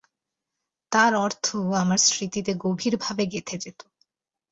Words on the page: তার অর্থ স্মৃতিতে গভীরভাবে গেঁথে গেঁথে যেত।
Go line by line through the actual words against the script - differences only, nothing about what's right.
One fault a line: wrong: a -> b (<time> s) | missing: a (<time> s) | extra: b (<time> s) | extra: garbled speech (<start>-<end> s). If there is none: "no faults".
extra: আমার (1.8 s)
missing: গেঁথে (3.5 s)